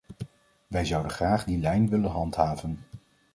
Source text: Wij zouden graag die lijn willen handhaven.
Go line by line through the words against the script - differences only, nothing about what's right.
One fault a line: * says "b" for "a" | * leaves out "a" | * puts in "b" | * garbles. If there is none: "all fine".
all fine